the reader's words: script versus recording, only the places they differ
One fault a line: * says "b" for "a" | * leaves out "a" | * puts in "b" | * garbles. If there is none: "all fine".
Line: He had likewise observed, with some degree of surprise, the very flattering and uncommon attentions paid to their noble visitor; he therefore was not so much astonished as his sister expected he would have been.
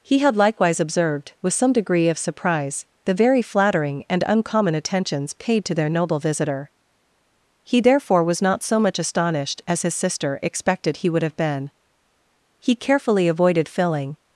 * puts in "He carefully avoided filling"